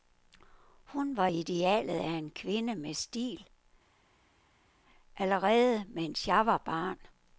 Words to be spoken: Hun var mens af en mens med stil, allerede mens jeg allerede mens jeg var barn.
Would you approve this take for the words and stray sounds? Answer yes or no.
no